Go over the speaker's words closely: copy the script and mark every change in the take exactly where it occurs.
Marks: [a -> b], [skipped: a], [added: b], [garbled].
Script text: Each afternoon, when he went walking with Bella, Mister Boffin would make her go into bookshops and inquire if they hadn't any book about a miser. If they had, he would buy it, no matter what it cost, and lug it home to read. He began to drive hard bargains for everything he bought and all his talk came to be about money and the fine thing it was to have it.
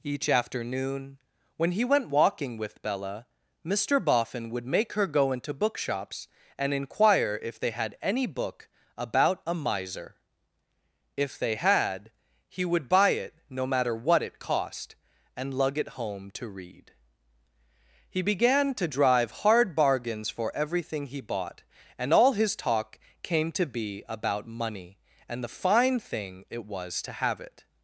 Each afternoon, when he went walking with Bella, Mister Boffin would make her go into bookshops and inquire if they [hadn't -> had] any book about a miser. If they had, he would buy it, no matter what it cost, and lug it home to read. He began to drive hard bargains for everything he bought and all his talk came to be about money and the fine thing it was to have it.